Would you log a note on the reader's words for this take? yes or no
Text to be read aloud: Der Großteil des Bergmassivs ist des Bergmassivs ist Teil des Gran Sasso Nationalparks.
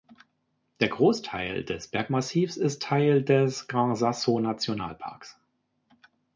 yes